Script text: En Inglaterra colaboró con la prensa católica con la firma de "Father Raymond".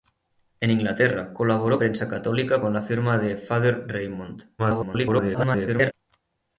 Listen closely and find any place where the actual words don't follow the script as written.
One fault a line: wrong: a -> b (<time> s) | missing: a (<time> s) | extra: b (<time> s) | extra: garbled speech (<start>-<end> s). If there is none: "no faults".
missing: con la (1.8 s)
extra: garbled speech (4.6-5.9 s)